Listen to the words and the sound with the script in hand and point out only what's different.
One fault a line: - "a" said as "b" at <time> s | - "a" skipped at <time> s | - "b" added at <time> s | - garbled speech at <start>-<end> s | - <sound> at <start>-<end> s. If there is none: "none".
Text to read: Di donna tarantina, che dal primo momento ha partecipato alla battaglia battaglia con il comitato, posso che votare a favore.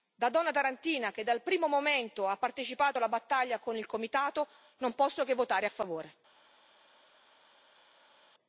- "Di" said as "Da" at 0.1 s
- "battaglia" skipped at 3.6 s
- "non" added at 4.8 s